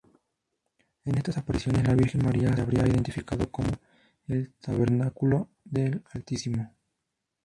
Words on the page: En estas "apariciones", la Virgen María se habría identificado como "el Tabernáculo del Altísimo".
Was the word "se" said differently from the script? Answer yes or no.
yes